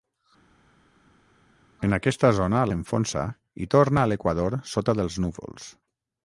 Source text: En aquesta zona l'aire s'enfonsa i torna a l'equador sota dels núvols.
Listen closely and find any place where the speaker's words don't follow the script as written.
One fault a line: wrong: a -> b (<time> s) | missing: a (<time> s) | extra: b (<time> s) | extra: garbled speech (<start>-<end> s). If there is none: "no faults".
missing: l'aire (2.6 s)